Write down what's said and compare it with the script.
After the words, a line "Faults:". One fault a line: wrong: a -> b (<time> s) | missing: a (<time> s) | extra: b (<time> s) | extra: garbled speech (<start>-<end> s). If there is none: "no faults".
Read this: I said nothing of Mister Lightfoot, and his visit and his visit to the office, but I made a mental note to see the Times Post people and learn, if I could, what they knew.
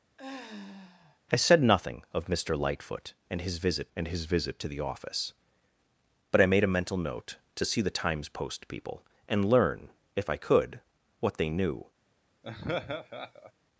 I said nothing of Mister Lightfoot, and his visit and his visit to the office, but I made a mental note to see the Times Post people and learn, if I could, what they knew.
Faults:
no faults